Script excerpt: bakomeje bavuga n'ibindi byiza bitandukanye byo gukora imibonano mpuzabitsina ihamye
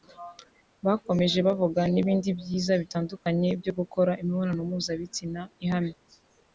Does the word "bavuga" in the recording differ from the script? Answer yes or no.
no